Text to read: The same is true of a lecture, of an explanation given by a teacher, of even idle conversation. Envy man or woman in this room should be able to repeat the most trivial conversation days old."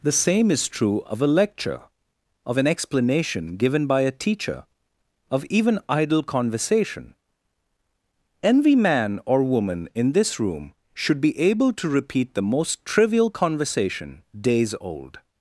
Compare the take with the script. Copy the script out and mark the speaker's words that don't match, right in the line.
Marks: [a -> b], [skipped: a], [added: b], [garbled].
The same is true of a lecture, of an explanation given by a teacher, of even idle conversation. Envy man or woman in this room should be able to repeat the most trivial conversation days old."